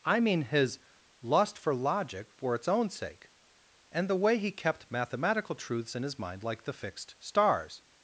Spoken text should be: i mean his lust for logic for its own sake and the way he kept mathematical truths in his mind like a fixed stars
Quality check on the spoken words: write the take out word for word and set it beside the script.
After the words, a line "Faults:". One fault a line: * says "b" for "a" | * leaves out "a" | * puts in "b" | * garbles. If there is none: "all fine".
i mean his lust for logic for its own sake and the way he kept mathematical truths in his mind like the fixed stars
Faults:
* says "the" for "a"